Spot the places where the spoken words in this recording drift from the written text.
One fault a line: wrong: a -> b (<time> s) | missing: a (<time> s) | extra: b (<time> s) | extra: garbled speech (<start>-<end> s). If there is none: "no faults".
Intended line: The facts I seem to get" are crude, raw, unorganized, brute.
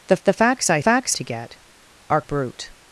extra: the (0.2 s)
wrong: seem -> facts (0.8 s)
missing: crude raw unorganized (2.2 s)